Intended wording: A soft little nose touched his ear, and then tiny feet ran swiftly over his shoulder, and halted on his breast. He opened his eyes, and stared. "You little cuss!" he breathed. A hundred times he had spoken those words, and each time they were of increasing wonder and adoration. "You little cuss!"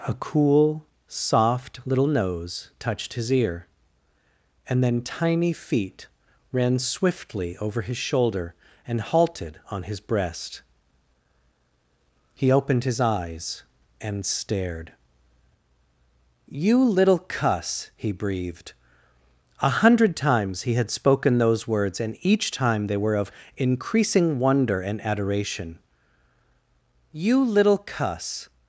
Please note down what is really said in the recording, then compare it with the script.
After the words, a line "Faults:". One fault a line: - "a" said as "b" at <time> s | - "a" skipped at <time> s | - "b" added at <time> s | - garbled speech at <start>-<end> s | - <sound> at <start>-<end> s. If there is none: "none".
A cool, soft little nose touched his ear, and then tiny feet ran swiftly over his shoulder, and halted on his breast. He opened his eyes, and stared. "You little cuss!" he breathed. A hundred times he had spoken those words, and each time they were of increasing wonder and adoration. "You little cuss!"
Faults:
- "cool" added at 0.1 s